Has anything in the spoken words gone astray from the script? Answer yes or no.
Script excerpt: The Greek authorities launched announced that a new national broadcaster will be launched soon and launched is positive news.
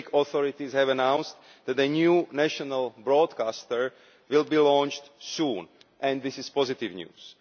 yes